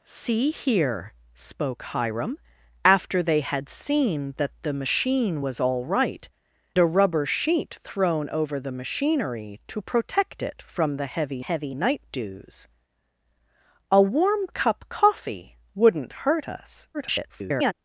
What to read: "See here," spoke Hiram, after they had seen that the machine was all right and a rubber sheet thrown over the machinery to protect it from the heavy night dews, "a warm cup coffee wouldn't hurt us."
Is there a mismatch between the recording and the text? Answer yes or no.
yes